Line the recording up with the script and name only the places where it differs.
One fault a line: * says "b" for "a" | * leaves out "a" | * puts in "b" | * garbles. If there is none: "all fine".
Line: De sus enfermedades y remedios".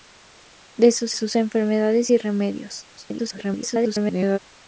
* puts in "sus"
* garbles